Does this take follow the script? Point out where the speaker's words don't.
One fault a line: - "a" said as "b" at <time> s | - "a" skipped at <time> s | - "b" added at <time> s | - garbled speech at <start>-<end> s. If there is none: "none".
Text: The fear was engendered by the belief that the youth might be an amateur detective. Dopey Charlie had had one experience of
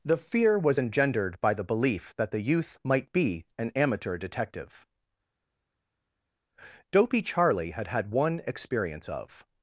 none